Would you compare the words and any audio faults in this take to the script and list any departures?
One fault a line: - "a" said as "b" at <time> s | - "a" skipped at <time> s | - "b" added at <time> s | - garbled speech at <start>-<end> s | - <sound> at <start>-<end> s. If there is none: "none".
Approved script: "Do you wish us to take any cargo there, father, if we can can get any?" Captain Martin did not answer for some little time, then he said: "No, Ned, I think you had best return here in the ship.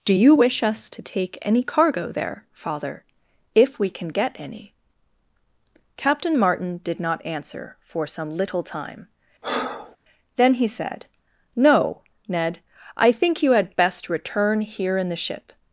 - "can" skipped at 4.1 s
- breath at 9.4-10.0 s